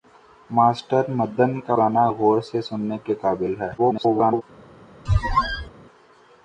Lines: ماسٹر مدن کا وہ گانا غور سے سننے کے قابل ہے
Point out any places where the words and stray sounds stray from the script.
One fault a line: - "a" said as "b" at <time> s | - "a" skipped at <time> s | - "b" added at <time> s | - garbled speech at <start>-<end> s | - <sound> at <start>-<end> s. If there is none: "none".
- "وہ" skipped at 1.8 s
- garbled speech at 3.8-4.4 s
- squeak at 5.1-5.7 s